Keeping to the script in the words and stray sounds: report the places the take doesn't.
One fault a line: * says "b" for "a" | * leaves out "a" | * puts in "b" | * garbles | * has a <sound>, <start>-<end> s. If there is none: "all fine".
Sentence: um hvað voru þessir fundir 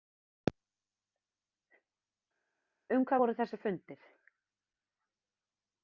all fine